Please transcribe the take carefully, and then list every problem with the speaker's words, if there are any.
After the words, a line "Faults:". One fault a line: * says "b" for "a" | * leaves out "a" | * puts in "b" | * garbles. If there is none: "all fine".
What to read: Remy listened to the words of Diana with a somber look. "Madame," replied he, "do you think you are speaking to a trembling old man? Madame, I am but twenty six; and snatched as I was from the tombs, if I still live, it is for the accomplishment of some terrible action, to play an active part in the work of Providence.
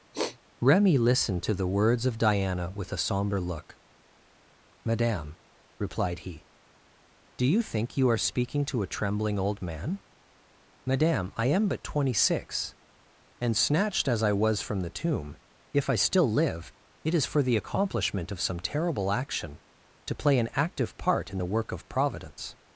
Remy listened to the words of Diana with a somber look. "Madame," replied he, "do you think you are speaking to a trembling old man? Madame, I am but twenty six; and snatched as I was from the tomb, if I still live, it is for the accomplishment of some terrible action, to play an active part in the work of Providence.
Faults:
* says "tomb" for "tombs"